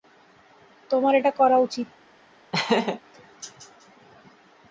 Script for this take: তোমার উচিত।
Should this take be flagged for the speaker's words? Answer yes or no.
yes